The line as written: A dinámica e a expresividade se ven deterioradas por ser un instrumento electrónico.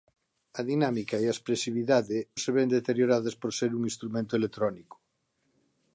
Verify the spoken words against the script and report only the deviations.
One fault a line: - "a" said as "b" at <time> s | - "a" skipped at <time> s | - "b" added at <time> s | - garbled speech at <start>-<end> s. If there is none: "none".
none